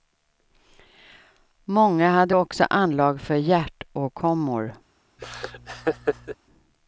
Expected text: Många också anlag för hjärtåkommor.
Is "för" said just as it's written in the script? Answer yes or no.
yes